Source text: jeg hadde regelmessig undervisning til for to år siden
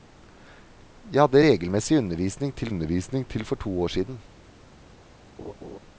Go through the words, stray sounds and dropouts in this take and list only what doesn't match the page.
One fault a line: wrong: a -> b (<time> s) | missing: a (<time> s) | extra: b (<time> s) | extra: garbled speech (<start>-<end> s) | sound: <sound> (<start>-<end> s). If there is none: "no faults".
extra: undervisning til (2.7 s)
sound: laugh (5.4-5.8 s)